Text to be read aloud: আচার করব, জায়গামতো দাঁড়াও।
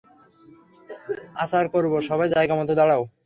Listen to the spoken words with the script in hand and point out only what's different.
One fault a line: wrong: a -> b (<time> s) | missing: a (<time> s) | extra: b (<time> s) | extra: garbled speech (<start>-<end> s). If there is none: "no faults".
extra: সবাই (2.1 s)